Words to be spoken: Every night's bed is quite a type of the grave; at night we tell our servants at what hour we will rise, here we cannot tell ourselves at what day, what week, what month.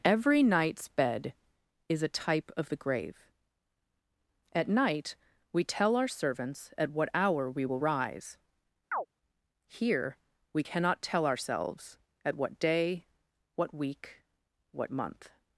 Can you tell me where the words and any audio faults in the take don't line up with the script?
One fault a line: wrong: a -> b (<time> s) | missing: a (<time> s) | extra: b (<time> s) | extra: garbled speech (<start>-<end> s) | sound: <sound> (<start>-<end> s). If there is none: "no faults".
missing: quite (2.0 s)
sound: chirp (8.9-9.1 s)